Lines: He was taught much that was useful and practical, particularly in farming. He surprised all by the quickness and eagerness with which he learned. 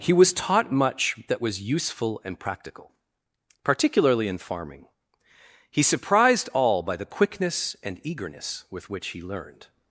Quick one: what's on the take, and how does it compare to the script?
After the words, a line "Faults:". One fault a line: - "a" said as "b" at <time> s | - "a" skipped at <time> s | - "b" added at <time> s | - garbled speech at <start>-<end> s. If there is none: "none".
He was taught much that was useful and practical, particularly in farming. He surprised all by the quickness and eagerness with which he learned.
Faults:
none